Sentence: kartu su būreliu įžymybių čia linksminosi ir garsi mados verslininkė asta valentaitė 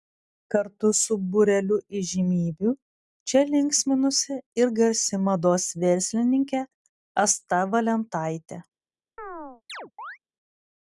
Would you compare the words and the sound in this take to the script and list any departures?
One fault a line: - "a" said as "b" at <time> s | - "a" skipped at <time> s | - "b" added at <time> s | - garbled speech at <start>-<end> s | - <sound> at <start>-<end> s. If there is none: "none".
- chirp at 9.2-10.2 s